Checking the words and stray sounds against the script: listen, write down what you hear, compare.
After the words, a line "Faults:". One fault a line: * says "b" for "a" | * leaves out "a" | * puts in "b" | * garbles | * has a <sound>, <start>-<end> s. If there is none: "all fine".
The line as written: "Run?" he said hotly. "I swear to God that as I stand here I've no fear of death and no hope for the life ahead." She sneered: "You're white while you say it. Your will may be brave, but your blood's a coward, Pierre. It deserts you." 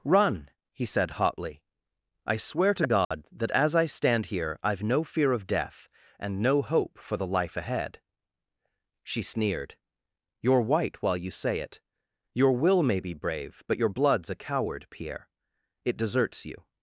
"Run?" he said hotly. "I swear to God that as I stand here I've no fear of death and no hope for the life ahead." She sneered: "You're white while you say it. Your will may be brave, but your blood's a coward, Pierre. It deserts you."
Faults:
* has a dropout, 3.0-3.1 s